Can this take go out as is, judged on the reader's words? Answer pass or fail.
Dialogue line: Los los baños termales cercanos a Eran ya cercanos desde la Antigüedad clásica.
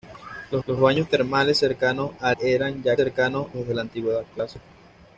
pass